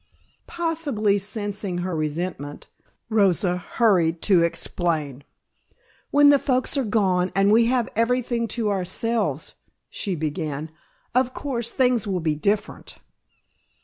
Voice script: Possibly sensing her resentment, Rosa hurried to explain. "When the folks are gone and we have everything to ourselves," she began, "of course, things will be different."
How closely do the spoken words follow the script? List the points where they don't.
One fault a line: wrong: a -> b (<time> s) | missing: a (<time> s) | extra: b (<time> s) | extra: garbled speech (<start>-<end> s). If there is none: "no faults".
no faults